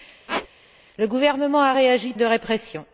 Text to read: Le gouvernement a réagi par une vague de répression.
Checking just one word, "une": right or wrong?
wrong